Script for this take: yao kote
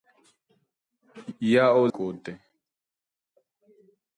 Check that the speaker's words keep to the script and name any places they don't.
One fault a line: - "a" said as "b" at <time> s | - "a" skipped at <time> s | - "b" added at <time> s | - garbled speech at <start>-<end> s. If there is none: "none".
none